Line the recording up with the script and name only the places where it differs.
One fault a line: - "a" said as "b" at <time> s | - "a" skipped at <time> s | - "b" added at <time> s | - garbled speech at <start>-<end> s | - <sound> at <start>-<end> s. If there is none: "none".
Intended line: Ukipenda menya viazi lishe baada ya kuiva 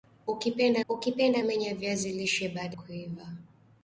- "ukipenda" added at 0.9 s
- "ya" skipped at 2.8 s